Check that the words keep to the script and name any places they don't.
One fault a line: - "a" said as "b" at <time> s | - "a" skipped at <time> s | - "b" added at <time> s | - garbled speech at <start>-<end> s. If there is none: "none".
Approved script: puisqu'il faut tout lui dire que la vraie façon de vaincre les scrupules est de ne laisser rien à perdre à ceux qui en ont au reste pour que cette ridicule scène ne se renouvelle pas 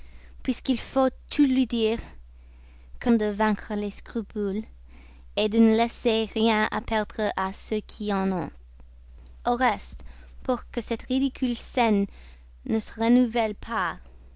- "la vraie façon" skipped at 3.1 s